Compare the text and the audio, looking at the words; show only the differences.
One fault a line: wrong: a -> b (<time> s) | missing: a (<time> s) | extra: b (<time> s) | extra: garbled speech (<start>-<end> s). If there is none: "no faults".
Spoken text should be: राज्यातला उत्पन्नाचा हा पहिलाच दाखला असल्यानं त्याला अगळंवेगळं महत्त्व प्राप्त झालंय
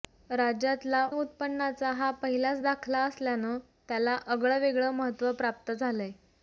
no faults